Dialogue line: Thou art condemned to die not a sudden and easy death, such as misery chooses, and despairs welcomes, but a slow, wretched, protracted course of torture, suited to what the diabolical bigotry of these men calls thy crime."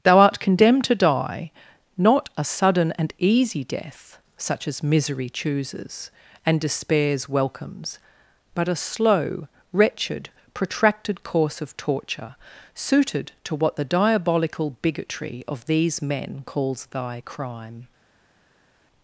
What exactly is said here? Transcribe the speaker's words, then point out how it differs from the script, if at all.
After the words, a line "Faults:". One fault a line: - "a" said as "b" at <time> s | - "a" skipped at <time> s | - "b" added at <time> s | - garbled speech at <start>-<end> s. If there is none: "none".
Thou art condemned to die not a sudden and easy death, such as misery chooses, and despairs welcomes, but a slow, wretched, protracted course of torture, suited to what the diabolical bigotry of these men calls thy crime."
Faults:
none